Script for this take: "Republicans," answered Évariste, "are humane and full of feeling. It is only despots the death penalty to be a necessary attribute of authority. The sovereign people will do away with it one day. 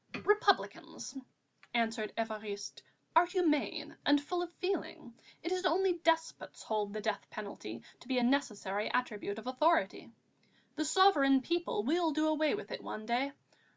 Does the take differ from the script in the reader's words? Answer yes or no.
yes